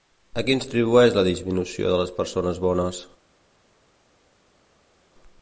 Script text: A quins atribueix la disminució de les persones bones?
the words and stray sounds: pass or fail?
pass